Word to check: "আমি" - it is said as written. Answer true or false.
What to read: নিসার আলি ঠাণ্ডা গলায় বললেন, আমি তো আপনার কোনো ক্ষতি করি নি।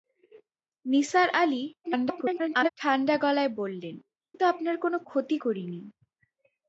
false